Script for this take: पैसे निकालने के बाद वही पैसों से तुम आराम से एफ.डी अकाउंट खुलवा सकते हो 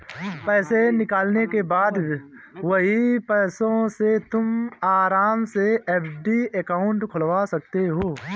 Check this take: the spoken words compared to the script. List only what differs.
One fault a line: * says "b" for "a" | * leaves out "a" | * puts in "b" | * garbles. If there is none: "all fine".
all fine